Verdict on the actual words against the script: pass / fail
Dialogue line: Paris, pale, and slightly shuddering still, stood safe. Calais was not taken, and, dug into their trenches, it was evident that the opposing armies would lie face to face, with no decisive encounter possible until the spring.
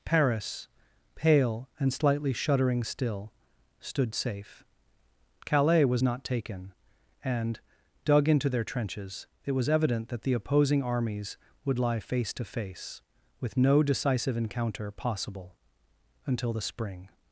pass